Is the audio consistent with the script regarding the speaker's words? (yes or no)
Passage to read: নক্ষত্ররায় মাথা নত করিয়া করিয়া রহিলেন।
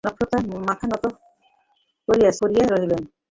yes